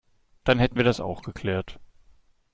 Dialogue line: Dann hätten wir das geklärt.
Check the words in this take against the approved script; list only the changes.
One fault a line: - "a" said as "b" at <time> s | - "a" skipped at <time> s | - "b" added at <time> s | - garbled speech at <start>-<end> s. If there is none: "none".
- "auch" added at 1.0 s